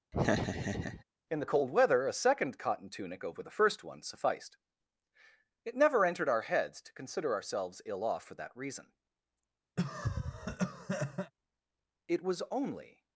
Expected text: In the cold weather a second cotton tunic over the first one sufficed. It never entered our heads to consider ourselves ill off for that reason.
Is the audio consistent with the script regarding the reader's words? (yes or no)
no